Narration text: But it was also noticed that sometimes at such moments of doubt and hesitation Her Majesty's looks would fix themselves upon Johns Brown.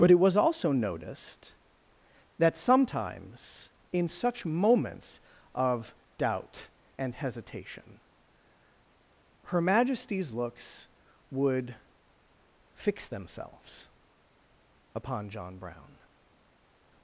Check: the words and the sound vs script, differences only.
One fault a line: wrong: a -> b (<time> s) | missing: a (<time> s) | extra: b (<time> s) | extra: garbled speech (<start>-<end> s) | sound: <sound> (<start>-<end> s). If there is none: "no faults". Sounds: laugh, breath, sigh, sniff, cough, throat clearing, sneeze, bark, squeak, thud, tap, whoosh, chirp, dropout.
wrong: at -> in (3.9 s)
wrong: Johns -> John (15.3 s)